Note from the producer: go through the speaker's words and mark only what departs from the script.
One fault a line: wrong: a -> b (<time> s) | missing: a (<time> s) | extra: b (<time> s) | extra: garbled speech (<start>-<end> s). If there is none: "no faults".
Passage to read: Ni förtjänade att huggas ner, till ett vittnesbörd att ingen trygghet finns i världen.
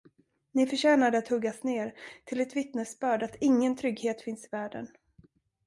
no faults